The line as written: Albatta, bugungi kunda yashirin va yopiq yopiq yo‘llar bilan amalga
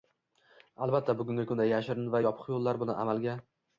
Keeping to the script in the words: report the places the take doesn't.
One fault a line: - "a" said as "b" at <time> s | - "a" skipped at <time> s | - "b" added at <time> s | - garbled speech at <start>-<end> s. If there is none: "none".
- "yopiq" skipped at 2.5 s